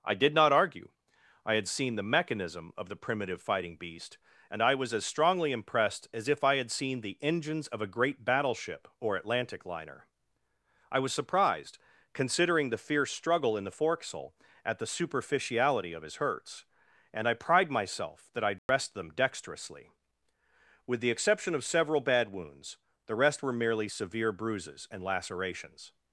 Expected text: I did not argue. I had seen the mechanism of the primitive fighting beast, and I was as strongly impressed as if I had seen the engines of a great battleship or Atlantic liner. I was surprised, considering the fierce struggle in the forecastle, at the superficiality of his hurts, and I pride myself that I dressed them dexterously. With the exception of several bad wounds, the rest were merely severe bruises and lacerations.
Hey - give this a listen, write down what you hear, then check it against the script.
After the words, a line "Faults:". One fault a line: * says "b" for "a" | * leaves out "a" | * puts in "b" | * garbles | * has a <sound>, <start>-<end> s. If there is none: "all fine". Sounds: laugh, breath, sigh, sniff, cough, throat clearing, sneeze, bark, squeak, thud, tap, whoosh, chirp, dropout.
I did not argue. I had seen the mechanism of the primitive fighting beast, and I was as strongly impressed as if I had seen the engines of a great battleship or Atlantic liner. I was surprised, considering the fierce struggle in the forecastle, at the superficiality of his hurts, and I pride myself that I dressed them dexterously. With the exception of several bad wounds, the rest were merely severe bruises and lacerations.
Faults:
* has a dropout, 18.6-18.7 s